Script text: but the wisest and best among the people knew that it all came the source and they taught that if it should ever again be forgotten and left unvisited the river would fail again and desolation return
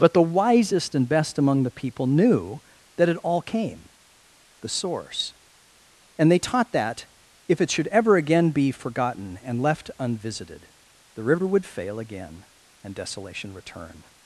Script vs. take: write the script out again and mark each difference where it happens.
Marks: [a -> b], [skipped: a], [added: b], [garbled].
but the wisest and best among the people knew that it all came the source and they taught that if it should ever again be forgotten and left unvisited the river would fail again and desolation return